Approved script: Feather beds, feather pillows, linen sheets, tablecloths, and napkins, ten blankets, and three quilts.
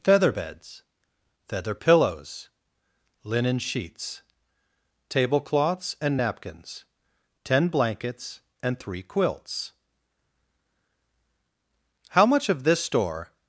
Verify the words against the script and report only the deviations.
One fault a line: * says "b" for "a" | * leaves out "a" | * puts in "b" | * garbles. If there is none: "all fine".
* puts in "How much of this store"